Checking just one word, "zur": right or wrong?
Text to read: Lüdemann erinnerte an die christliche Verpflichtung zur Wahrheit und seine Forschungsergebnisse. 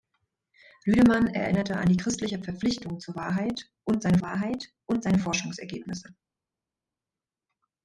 right